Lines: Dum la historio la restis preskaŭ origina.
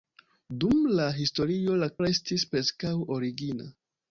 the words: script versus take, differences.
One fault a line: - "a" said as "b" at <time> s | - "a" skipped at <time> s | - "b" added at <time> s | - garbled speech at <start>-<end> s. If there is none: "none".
none